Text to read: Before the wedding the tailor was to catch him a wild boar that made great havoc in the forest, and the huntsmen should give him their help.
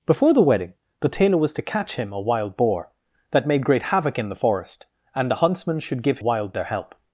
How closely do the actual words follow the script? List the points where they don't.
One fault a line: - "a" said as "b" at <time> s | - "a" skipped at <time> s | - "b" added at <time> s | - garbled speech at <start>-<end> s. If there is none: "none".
- "him" said as "wild" at 6.2 s